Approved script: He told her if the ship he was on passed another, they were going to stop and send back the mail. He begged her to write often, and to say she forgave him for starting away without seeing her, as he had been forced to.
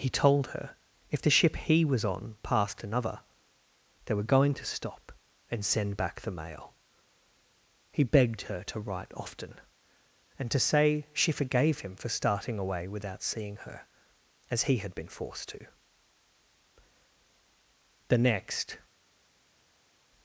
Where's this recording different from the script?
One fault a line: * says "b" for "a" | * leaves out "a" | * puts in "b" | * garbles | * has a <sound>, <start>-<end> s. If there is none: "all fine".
* puts in "The next"